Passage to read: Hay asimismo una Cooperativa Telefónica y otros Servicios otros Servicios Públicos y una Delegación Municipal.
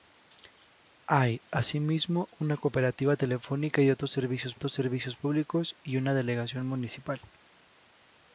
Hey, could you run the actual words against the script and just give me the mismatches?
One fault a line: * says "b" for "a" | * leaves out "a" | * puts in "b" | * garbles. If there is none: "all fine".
all fine